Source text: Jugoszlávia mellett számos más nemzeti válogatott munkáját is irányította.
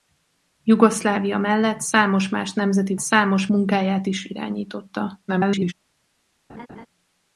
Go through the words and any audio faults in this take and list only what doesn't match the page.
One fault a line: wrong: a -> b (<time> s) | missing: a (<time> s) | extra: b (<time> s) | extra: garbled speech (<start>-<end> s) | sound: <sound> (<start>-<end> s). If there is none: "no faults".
wrong: válogatott -> számos (3.0 s)
extra: garbled speech (5.3-5.7 s)
sound: laugh (6.5-6.9 s)